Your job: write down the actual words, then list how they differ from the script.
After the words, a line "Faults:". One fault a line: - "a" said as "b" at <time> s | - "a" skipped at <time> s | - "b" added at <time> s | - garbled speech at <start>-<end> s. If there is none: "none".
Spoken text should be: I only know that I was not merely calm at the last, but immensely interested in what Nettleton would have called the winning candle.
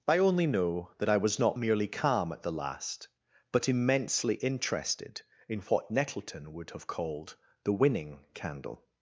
I only know that I was not merely calm at the last, but immensely interested in what Nettleton would have called the winning candle.
Faults:
none